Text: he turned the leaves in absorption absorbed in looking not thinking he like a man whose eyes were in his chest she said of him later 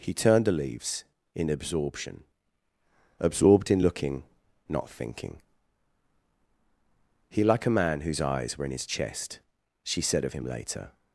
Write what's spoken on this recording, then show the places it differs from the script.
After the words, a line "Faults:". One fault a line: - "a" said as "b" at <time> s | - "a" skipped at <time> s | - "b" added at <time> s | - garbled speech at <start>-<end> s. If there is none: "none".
he turned the leaves in absorption absorbed in looking not thinking he like a man whose eyes were in his chest she said of him later
Faults:
none